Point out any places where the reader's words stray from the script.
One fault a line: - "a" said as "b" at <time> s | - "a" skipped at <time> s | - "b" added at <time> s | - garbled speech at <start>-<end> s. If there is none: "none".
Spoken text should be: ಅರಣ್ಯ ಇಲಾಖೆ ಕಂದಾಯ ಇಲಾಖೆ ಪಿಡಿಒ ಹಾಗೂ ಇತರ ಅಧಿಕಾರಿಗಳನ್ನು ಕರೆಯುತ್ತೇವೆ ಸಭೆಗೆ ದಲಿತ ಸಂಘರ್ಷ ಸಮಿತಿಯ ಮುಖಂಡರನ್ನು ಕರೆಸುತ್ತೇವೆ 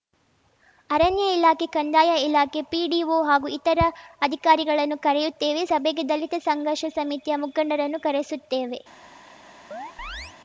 none